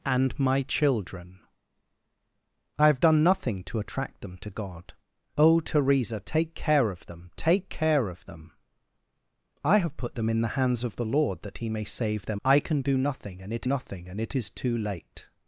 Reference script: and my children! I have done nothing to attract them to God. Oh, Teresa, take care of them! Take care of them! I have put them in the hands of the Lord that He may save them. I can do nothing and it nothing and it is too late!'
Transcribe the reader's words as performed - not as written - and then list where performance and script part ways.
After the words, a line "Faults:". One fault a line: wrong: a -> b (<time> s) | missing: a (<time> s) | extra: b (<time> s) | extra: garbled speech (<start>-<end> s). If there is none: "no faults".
and my children! I have done nothing to attract them to God. Oh, Teresa, take care of them! Take care of them! I have put them in the hands of the Lord that He may save them. I can do nothing and it nothing and it is too late!'
Faults:
no faults